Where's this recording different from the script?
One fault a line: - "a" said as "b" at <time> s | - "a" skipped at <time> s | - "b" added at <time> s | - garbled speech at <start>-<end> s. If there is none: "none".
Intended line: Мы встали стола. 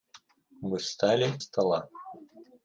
none